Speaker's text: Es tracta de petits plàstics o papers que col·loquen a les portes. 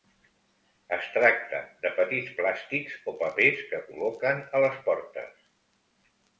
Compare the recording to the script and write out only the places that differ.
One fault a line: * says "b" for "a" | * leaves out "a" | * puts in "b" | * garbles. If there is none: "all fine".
all fine